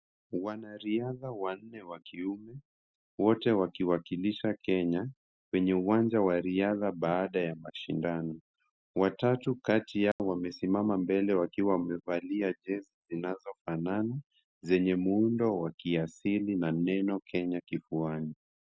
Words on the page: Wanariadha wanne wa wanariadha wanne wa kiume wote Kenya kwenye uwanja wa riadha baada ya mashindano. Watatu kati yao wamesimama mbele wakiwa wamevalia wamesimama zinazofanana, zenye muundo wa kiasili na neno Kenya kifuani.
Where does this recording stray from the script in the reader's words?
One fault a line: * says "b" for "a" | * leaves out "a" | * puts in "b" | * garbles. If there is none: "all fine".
* leaves out "wanariadha wanne wa"
* puts in "wakiwakilisha"
* says "jezi" for "wamesimama"